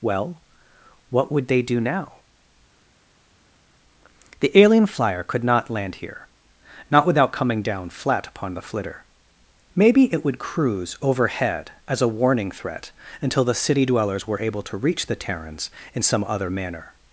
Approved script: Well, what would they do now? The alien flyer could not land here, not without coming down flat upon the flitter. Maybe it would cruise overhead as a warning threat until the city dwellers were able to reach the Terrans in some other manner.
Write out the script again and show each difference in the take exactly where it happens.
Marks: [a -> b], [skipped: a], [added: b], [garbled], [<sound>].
Well, what would they do now? The alien flyer could not land here, not without coming down flat upon the flitter. Maybe it would cruise overhead as a warning threat until the city dwellers were able to reach the Terrans in some other manner.